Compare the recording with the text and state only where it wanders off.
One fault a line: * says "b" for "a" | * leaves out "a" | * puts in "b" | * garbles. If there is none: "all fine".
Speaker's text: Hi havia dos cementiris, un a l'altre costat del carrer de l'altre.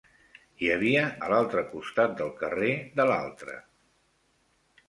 * leaves out "dos cementiris un"